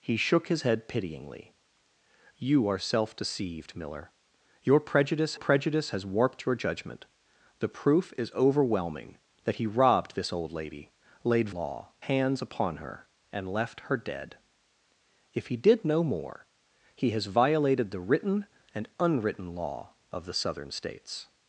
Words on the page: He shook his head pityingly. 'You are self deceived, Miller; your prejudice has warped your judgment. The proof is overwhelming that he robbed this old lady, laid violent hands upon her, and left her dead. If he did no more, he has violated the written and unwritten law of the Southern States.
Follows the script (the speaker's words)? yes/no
no